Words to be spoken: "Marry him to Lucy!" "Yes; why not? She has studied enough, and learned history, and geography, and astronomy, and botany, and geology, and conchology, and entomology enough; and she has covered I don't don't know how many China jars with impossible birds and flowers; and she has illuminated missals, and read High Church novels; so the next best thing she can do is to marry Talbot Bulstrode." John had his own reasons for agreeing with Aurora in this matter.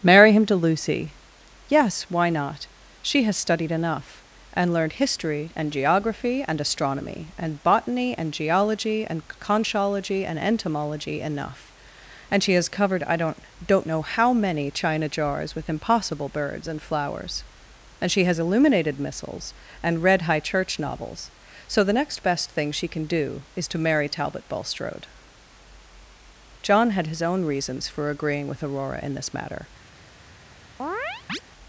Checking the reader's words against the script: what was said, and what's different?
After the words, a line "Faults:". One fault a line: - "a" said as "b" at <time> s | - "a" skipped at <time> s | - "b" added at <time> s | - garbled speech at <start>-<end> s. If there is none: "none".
"Marry him to Lucy!" "Yes; why not? She has studied enough, and learned history, and geography, and astronomy, and botany, and geology, and conchology, and entomology enough; and she has covered I don't don't know how many China jars with impossible birds and flowers; and she has illuminated missals, and read High Church novels; so the next best thing she can do is to marry Talbot Bulstrode." John had his own reasons for agreeing with Aurora in this matter.
Faults:
none